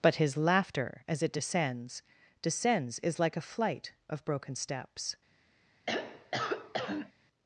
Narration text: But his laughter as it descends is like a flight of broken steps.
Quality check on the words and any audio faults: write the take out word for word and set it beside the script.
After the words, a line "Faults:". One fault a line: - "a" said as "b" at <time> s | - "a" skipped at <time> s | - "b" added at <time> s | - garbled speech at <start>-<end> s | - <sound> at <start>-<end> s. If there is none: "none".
But his laughter as it descends descends is like a flight of broken steps.
Faults:
- "descends" added at 2.4 s
- throat clearing at 5.9-7.1 s